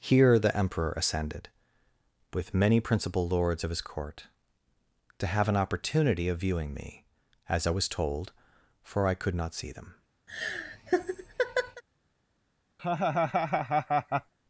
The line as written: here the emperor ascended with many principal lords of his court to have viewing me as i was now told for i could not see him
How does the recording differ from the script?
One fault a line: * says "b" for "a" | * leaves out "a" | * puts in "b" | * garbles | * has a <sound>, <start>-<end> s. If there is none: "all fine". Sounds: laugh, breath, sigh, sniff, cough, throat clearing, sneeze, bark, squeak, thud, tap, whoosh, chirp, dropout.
* puts in "an opportunity of"
* leaves out "now"
* says "them" for "him"
* has a laugh, 10.3-11.8 s
* has a laugh, 12.8-14.3 s